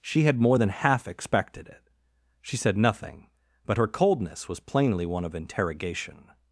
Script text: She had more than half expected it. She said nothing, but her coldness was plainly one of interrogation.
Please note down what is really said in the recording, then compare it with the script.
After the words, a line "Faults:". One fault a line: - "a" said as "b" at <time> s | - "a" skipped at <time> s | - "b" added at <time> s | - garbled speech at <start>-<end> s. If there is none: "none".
She had more than half expected it. She said nothing, but her coldness was plainly one of interrogation.
Faults:
none